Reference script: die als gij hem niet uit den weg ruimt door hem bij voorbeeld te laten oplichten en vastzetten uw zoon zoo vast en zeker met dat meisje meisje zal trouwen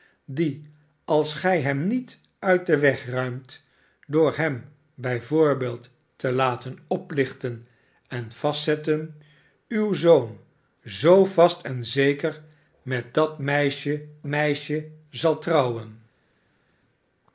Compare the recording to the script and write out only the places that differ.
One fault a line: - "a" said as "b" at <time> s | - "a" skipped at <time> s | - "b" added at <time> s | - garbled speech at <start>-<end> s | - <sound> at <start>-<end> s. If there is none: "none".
none